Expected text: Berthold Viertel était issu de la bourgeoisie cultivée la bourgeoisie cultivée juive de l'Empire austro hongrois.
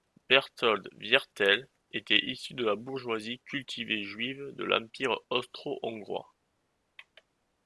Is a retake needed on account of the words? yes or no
yes